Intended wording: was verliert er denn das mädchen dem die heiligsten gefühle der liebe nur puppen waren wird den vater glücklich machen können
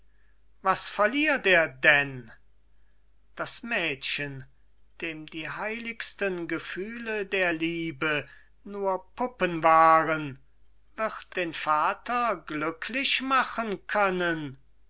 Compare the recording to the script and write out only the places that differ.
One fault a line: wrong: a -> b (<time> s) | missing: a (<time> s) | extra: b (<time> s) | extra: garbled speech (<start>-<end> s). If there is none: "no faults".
no faults